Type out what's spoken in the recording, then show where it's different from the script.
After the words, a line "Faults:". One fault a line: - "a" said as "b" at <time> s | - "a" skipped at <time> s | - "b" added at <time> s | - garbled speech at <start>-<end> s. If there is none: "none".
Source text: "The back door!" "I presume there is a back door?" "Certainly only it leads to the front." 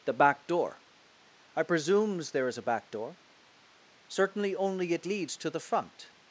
"The back door!" "I presumes there is a back door?" "Certainly only it leads to the front."
Faults:
- "presume" said as "presumes" at 1.6 s